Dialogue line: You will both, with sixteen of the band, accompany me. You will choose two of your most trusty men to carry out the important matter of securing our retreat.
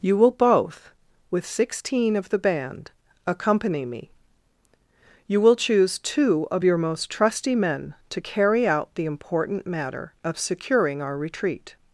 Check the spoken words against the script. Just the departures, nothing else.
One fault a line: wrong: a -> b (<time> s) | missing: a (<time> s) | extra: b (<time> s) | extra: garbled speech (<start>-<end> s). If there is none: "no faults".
no faults